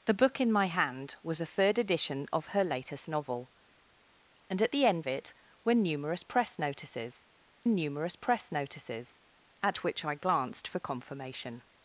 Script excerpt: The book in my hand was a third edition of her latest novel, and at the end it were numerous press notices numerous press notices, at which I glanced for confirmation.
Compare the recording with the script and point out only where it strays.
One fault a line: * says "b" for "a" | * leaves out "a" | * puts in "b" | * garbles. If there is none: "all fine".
all fine